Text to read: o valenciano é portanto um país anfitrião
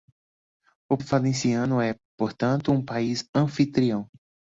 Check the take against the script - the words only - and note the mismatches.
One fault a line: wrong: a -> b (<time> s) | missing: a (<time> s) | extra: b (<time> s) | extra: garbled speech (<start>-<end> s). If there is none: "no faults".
no faults